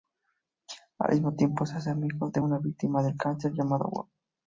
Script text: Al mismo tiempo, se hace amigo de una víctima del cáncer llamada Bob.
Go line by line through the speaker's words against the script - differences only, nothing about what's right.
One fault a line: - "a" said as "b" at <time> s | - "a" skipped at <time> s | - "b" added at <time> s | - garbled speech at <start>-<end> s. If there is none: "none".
none